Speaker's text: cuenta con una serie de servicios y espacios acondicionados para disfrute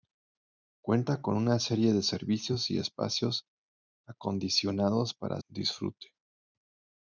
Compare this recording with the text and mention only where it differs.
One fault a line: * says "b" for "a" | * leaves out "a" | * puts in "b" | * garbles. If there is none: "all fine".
all fine